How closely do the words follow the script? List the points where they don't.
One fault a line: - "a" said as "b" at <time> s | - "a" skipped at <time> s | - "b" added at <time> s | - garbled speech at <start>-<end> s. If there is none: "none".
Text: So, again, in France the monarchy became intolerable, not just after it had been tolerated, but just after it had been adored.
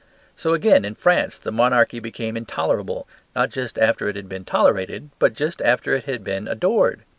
none